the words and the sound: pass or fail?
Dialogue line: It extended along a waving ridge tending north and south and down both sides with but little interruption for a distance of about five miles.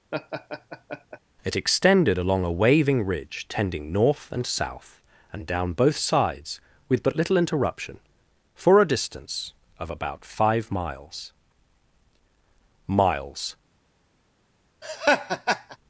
fail